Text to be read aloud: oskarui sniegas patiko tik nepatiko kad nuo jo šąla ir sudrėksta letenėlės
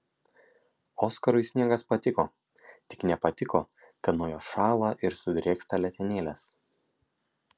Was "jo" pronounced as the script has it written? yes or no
yes